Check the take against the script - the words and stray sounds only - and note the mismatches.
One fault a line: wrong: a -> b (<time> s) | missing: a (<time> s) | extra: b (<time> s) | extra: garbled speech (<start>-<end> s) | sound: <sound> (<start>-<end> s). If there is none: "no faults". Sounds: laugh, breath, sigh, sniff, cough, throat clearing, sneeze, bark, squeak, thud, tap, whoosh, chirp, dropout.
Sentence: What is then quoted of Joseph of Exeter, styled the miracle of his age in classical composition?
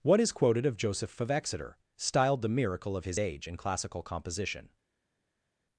missing: then (0.3 s)